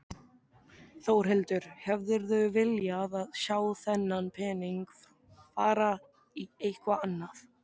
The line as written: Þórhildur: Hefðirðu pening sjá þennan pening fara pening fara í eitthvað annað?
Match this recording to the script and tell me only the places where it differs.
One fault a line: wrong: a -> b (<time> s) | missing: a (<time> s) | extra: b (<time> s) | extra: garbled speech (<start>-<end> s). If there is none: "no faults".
wrong: pening -> viljað (2.6 s)
missing: pening fara (5.9 s)